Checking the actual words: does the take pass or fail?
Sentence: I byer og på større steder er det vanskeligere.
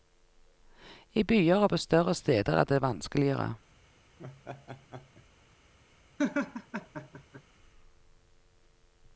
pass